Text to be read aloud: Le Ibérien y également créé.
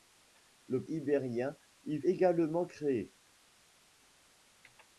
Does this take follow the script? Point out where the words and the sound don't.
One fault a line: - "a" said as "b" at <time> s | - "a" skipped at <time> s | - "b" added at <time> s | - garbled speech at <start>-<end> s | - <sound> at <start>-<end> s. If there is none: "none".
none